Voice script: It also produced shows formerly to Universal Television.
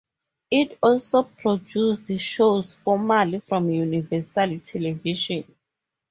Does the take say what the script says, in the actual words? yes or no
no